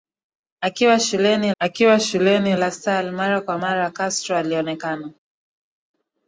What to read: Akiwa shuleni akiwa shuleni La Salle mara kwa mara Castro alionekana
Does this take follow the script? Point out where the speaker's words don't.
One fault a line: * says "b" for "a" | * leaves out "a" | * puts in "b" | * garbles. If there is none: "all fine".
all fine